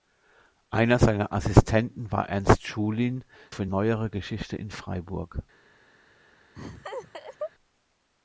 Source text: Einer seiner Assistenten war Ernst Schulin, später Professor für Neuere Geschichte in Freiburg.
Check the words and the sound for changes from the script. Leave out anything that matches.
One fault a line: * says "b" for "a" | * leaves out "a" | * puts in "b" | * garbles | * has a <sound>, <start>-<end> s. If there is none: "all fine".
* leaves out "später Professor"
* has a laugh, 6.6-7.5 s